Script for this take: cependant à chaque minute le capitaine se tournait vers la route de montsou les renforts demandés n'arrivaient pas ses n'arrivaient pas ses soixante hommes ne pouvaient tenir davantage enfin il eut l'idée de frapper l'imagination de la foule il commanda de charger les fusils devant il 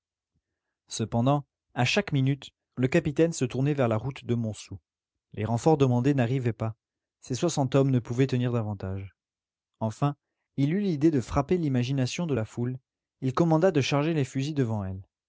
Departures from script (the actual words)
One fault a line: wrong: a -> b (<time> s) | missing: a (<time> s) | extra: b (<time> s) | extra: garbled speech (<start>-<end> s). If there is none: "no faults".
missing: n'arrivaient pas ses (7.3 s)
wrong: il -> elle (14.8 s)